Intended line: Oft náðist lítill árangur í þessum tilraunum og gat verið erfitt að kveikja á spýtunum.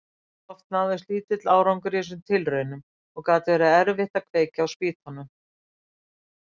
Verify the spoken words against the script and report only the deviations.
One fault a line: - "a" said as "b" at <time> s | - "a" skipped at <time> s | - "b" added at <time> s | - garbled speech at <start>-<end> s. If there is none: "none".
none